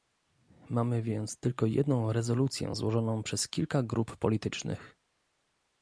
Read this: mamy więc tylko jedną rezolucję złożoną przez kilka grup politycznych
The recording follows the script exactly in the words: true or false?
true